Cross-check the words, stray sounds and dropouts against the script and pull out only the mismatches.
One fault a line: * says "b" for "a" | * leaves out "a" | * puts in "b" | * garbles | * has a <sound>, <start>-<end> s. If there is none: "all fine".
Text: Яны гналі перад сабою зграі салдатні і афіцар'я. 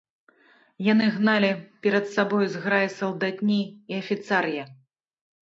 all fine